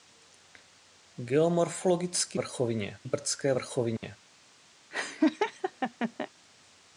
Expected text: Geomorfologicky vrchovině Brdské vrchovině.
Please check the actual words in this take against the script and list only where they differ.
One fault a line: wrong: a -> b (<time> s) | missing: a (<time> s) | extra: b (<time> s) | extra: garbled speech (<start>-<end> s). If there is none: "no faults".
no faults